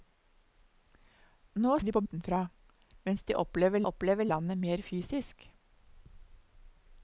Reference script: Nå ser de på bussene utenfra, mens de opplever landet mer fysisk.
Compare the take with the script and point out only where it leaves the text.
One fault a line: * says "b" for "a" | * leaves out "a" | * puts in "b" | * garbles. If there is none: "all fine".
* leaves out "ser"
* leaves out "bussene"
* puts in "opplever"